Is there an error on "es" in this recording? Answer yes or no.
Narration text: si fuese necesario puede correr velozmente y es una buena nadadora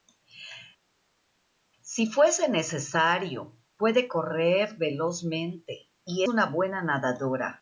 yes